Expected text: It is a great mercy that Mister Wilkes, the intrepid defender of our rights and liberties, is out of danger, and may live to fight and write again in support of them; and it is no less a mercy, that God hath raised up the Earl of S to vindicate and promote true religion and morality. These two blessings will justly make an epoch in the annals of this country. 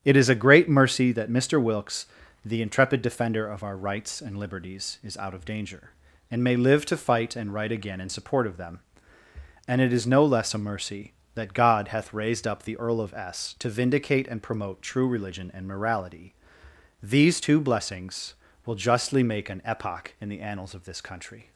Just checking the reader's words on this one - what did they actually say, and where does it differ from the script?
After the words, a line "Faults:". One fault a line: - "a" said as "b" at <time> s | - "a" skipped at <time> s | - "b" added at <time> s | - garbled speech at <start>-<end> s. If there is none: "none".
It is a great mercy that Mister Wilkes, the intrepid defender of our rights and liberties, is out of danger, and may live to fight and write again in support of them; and it is no less a mercy, that God hath raised up the Earl of S to vindicate and promote true religion and morality. These two blessings will justly make an epoch in the annals of this country.
Faults:
none